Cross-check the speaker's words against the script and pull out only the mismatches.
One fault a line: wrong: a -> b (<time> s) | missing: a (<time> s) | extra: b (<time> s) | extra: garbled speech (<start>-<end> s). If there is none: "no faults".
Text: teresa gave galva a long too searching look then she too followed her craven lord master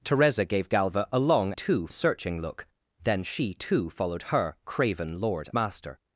no faults